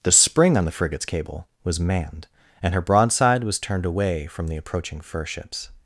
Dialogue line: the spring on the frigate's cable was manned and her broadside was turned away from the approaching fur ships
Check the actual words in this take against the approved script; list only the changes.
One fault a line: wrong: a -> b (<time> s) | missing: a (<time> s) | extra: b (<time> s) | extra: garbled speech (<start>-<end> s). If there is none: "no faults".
no faults